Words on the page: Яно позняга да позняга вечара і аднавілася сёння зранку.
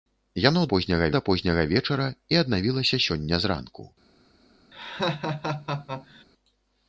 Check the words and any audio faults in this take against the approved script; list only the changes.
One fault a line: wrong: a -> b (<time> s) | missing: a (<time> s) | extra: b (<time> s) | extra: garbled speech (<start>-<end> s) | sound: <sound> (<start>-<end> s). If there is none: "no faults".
sound: laugh (4.7-6.2 s)